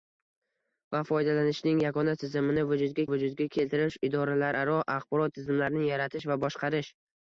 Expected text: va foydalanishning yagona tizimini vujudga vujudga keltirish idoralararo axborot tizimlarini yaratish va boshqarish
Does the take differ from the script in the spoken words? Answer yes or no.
no